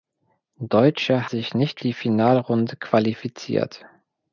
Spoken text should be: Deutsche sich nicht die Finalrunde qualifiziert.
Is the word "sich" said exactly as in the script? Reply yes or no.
yes